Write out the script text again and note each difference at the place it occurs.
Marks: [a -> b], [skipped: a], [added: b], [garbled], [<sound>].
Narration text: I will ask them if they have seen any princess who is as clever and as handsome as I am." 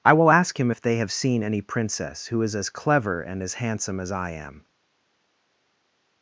I will ask [them -> him] if they have seen any princess who is as clever and as handsome as I am."